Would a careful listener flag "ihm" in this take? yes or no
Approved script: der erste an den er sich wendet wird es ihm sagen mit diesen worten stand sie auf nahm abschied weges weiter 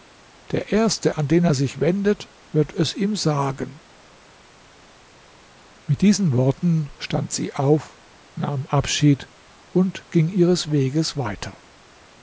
no